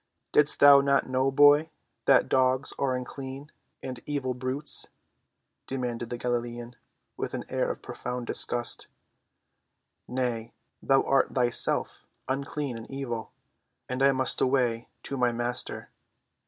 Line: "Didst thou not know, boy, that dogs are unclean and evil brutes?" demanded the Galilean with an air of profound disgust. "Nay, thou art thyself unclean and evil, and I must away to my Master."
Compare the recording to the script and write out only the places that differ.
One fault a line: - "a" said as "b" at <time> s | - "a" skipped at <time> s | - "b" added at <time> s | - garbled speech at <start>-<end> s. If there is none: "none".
none